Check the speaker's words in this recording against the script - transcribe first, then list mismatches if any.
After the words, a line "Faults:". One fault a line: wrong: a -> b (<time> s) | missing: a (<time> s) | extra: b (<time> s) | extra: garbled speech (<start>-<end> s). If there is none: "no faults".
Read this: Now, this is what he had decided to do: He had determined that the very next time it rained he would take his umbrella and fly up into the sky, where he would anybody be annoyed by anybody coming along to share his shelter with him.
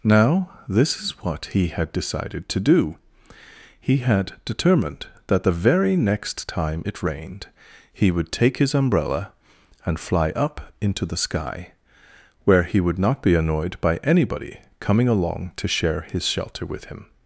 Now, this is what he had decided to do: He had determined that the very next time it rained he would take his umbrella and fly up into the sky, where he would not be annoyed by anybody coming along to share his shelter with him.
Faults:
wrong: anybody -> not (13.0 s)